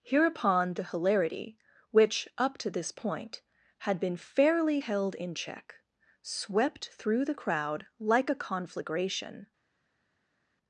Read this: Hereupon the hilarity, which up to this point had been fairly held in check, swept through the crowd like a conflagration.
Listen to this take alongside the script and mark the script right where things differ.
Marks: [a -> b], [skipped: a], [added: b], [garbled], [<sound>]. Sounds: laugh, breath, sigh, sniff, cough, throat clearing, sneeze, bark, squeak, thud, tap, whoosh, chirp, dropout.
Hereupon the hilarity, which up to this point had been fairly held in check, swept through the crowd like a conflagration.